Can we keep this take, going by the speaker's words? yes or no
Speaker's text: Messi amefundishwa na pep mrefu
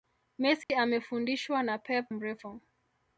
yes